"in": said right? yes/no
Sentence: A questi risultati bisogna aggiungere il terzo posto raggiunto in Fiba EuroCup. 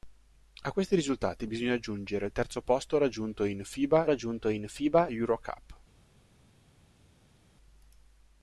yes